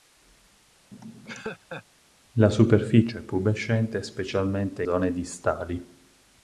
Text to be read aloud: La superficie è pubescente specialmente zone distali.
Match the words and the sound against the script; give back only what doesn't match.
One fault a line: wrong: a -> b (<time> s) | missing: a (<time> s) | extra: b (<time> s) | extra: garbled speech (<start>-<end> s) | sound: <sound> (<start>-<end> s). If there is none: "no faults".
sound: laugh (0.9-1.8 s)